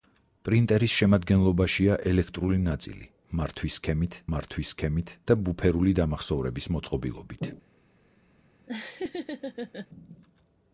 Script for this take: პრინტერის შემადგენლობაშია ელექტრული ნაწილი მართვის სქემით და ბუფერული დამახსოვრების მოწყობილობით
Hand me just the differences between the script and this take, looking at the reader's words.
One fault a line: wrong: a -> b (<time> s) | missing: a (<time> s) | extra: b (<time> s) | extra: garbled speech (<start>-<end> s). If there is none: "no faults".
extra: მართვის სქემით (4.3 s)